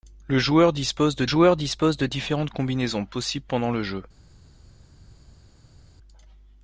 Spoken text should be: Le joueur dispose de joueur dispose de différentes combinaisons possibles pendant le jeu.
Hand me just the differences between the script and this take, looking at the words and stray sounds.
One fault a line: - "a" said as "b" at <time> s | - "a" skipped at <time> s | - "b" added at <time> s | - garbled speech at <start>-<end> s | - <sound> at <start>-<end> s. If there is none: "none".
none